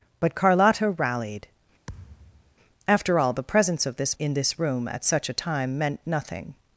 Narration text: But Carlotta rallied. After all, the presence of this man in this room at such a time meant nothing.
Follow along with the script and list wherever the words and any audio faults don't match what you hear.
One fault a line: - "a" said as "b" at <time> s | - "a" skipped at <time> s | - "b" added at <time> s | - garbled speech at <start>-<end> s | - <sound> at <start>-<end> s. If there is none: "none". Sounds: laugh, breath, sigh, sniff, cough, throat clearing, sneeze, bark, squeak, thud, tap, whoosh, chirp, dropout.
- thud at 1.9-2.6 s
- "man" skipped at 4.2 s